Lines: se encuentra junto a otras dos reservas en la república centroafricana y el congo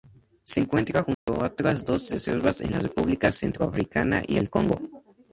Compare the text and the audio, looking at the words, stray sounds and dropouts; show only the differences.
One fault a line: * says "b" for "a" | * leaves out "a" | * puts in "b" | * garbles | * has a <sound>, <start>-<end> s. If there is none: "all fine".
* has a dropout, 1.1-1.3 s